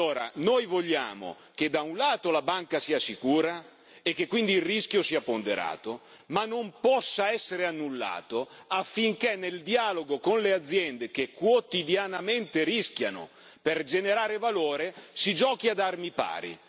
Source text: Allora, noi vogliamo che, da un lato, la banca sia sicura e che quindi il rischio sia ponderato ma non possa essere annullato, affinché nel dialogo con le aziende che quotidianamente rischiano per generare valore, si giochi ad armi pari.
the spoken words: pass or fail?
pass